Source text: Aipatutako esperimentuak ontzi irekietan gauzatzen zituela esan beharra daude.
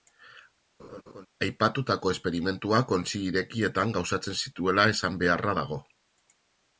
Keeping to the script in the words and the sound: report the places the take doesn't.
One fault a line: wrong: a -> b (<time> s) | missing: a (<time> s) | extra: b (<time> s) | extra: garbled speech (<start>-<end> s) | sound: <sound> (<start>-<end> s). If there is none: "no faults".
sound: laugh (0.8-1.3 s)
wrong: daude -> dago (5.6 s)